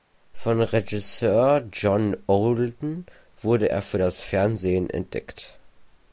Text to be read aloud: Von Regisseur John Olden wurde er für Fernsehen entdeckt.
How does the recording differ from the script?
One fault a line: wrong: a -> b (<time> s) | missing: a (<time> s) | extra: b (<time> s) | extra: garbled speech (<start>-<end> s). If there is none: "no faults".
extra: das (4.0 s)